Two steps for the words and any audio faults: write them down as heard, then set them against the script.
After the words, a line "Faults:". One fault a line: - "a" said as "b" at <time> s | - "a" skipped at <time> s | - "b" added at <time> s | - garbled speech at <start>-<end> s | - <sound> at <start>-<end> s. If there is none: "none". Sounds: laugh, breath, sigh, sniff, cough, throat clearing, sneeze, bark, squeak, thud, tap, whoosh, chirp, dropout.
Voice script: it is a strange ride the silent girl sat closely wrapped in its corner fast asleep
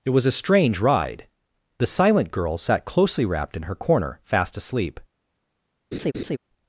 it was a strange ride the silent girl sat closely wrapped in her corner fast asleep
Faults:
- "is" said as "was" at 0.1 s
- "its" said as "her" at 3.6 s
- laugh at 5.9-6.4 s